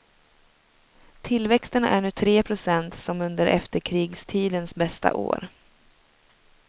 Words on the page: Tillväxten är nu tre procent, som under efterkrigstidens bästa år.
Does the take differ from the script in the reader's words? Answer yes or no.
no